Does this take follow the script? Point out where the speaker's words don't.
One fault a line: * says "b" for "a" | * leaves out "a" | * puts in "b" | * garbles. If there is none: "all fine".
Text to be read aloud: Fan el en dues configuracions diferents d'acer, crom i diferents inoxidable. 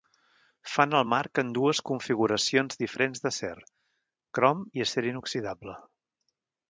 * puts in "marc"
* says "acer" for "diferents"